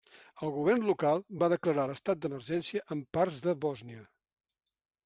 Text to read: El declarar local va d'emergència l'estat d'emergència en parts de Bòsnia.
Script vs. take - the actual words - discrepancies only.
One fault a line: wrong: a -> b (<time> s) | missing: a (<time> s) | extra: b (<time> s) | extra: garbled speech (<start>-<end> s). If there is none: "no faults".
wrong: declarar -> govern (0.5 s)
wrong: d'emergència -> declarar (1.5 s)